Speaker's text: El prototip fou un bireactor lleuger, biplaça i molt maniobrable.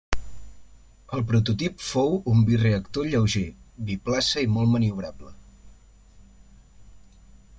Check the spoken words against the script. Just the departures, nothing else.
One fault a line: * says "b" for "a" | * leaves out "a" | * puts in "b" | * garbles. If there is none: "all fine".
all fine